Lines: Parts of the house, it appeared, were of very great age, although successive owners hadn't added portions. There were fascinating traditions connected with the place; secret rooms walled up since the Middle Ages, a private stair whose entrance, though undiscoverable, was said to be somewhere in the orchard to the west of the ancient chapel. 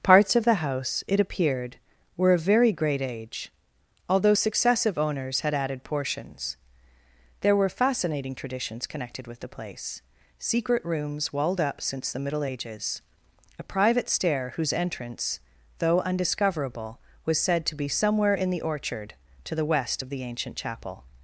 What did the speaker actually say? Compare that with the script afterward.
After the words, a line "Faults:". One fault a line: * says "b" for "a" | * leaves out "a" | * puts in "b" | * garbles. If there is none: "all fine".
Parts of the house, it appeared, were of very great age, although successive owners had added portions. There were fascinating traditions connected with the place; secret rooms walled up since the Middle Ages, a private stair whose entrance, though undiscoverable, was said to be somewhere in the orchard to the west of the ancient chapel.
Faults:
* says "had" for "hadn't"